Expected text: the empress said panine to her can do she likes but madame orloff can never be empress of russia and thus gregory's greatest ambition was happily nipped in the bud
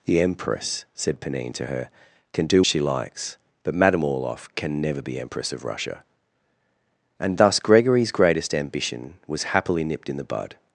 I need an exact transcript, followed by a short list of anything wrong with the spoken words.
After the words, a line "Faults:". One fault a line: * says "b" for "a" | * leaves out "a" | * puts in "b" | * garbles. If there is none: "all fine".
the empress said panine to her can do she likes but madame orloff can never be empress of russia and thus gregory's greatest ambition was happily nipped in the bud
Faults:
all fine